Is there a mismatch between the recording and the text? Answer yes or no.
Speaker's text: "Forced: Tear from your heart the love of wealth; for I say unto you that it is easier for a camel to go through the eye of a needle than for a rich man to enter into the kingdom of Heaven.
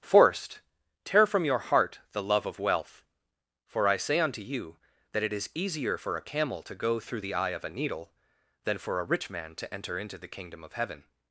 no